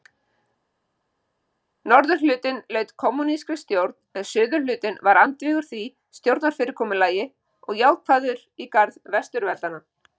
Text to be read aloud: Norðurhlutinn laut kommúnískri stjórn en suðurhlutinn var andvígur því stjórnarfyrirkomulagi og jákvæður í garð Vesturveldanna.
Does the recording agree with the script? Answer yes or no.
yes